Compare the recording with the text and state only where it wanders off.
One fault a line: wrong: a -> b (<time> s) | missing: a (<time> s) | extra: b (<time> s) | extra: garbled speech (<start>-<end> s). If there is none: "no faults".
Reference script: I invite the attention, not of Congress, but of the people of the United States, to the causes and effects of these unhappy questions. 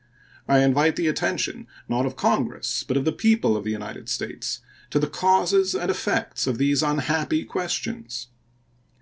no faults